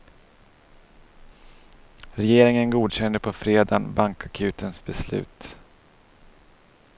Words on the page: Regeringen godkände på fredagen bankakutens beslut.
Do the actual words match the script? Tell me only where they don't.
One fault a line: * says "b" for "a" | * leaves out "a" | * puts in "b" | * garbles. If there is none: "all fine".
all fine